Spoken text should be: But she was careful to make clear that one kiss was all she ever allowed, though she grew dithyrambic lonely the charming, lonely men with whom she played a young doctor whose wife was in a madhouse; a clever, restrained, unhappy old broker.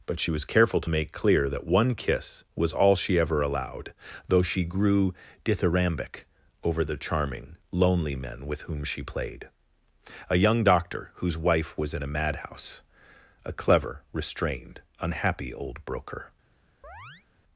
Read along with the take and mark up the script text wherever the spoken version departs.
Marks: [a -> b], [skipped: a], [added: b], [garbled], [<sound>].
But she was careful to make clear that one kiss was all she ever allowed, though she grew dithyrambic [lonely -> over] the charming, lonely men with whom she played a young doctor whose wife was in a madhouse; a clever, restrained, unhappy old broker. [chirp]